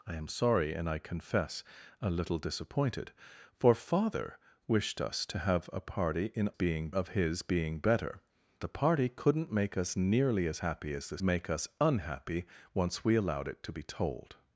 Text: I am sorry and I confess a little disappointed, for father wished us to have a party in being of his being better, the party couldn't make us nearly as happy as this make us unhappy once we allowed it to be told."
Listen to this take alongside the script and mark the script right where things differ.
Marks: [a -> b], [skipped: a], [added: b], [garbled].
I am sorry and I confess a little disappointed, for father wished us to have a party in being of his being better, the party couldn't make us nearly as happy as this make us unhappy once we allowed it to be told."